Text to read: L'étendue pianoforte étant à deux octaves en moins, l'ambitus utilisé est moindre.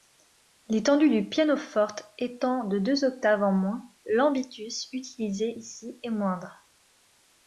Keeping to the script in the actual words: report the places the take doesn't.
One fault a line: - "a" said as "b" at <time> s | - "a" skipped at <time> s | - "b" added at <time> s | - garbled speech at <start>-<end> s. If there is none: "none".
- "du" added at 1.1 s
- "à" said as "de" at 2.6 s
- "ici" added at 5.6 s